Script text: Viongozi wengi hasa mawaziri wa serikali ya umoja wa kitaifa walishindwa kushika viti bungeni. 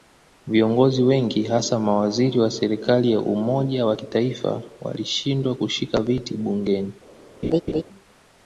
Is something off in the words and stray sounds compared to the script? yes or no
yes